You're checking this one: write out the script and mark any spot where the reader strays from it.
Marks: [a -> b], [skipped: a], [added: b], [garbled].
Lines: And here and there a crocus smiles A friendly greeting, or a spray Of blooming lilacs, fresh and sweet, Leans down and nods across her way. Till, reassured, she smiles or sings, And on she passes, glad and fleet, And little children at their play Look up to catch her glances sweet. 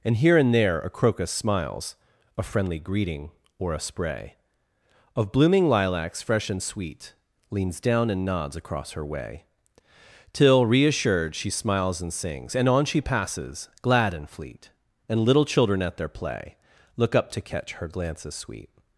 And here and there a crocus smiles A friendly greeting, or a spray Of blooming lilacs, fresh and sweet, Leans down and nods across her way. Till, reassured, she smiles [or -> and] sings, And on she passes, glad and fleet, And little children at their play Look up to catch her glances sweet.